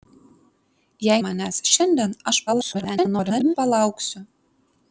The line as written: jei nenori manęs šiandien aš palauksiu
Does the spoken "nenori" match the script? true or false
false